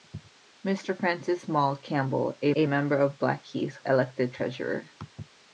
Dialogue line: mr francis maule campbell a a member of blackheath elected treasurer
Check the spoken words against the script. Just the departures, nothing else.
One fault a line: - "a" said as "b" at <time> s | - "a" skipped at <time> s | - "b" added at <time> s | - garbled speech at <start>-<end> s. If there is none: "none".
none